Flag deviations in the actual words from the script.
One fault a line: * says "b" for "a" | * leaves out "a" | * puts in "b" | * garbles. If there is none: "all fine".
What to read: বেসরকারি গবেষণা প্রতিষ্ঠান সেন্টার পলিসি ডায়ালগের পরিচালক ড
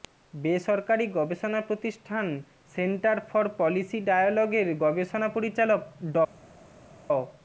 * puts in "ফর"
* puts in "গবেষণা"